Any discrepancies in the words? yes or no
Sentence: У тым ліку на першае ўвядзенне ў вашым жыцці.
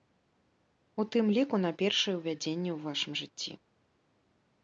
no